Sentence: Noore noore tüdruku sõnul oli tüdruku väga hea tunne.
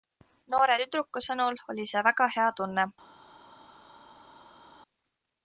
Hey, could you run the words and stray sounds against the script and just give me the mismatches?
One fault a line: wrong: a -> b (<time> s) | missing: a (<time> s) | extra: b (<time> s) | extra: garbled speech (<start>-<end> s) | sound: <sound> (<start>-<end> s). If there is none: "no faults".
missing: noore (0.8 s)
wrong: tüdruku -> see (1.9 s)